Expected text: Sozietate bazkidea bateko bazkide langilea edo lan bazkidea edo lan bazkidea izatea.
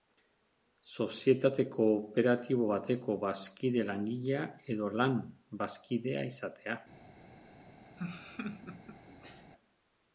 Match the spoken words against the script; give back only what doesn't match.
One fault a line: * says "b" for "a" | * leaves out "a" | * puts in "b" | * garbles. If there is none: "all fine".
* says "kooperatibo" for "bazkidea"
* leaves out "edo lan bazkidea"